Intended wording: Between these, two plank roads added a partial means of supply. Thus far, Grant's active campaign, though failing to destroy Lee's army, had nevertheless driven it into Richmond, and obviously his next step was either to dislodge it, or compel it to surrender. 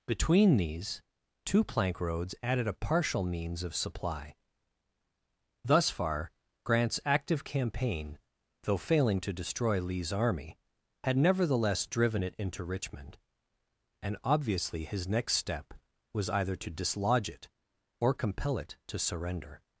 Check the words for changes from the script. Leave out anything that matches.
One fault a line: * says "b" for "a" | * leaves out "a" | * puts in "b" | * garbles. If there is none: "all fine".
all fine